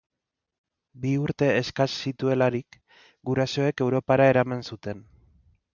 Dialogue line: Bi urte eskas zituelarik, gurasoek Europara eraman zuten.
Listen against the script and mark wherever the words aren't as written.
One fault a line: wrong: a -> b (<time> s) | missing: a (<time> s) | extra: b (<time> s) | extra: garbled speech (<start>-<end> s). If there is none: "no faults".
no faults